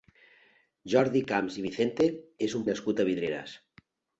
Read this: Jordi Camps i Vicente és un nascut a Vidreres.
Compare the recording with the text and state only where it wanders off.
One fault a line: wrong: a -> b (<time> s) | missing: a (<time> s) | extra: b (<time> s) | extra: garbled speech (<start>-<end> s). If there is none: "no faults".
no faults